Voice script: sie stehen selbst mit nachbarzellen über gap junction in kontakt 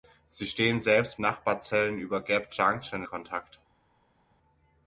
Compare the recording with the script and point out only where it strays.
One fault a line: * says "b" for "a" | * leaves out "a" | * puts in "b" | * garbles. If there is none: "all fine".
* leaves out "mit"
* leaves out "in"